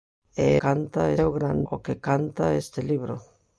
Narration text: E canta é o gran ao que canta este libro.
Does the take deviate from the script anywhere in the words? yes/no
no